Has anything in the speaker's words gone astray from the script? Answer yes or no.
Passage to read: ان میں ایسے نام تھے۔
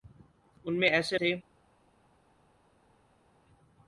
yes